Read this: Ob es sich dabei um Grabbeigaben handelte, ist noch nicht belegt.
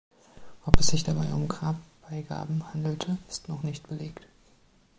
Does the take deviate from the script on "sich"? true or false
false